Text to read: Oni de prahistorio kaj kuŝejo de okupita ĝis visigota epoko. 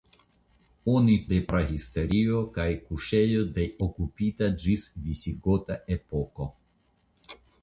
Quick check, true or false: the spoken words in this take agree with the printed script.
true